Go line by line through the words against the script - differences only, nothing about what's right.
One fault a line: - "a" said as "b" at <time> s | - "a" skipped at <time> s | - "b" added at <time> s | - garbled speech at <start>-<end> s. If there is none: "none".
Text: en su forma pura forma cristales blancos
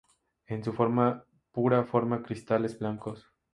none